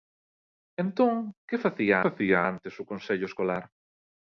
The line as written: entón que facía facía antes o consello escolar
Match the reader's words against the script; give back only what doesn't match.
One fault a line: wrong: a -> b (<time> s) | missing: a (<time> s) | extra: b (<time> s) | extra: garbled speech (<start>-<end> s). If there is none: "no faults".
no faults